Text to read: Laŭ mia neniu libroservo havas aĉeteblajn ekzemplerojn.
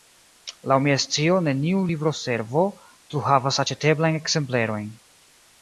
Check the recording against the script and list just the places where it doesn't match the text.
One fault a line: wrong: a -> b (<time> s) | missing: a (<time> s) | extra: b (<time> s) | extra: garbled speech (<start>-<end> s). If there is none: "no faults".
extra: scio (1.0 s)
extra: plu (2.9 s)